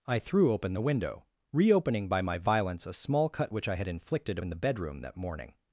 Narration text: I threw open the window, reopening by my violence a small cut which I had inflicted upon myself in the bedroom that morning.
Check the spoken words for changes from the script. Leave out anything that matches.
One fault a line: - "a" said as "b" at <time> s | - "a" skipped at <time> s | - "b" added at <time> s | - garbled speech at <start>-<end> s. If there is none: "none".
- "upon myself" skipped at 4.4 s